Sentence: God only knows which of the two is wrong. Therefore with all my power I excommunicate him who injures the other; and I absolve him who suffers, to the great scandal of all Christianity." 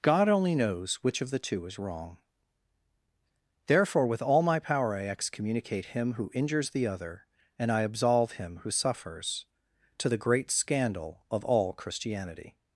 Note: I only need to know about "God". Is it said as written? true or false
true